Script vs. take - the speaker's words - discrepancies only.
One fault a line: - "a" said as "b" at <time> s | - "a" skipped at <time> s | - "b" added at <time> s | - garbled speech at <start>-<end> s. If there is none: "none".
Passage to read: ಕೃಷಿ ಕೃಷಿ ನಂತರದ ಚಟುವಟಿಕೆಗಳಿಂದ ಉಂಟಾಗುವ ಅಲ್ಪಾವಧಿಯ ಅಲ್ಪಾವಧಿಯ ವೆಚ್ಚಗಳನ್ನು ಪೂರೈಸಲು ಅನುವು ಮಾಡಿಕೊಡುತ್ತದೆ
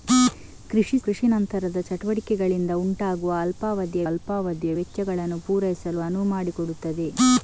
none